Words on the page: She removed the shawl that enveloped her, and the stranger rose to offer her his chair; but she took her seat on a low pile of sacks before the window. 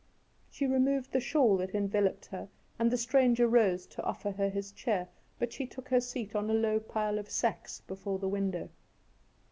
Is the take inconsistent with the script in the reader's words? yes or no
no